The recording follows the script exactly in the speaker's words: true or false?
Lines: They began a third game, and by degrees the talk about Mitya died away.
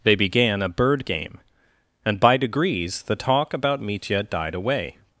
false